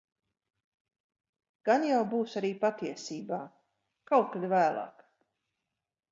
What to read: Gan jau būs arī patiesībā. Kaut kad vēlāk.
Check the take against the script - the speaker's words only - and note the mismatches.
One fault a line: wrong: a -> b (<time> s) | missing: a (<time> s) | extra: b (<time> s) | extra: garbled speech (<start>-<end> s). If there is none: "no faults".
no faults